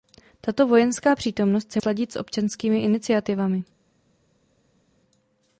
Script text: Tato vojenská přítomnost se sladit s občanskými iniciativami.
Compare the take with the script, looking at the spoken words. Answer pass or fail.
pass